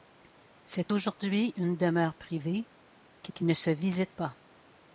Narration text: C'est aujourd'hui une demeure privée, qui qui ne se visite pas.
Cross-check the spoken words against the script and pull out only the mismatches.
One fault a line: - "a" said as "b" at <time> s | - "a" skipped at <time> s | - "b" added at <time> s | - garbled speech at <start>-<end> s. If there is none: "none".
none